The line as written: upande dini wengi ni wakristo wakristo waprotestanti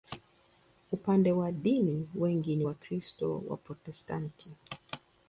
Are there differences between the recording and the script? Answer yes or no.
yes